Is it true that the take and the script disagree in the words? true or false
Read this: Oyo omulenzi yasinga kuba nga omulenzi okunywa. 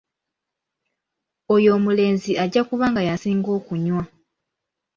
true